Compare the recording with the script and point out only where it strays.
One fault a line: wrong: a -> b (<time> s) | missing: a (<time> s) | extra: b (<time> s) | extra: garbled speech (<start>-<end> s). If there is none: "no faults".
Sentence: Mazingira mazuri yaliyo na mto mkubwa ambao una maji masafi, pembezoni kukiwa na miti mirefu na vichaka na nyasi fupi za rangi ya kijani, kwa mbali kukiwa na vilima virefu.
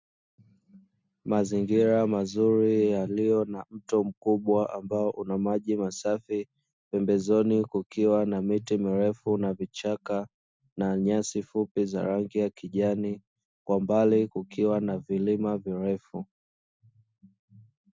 no faults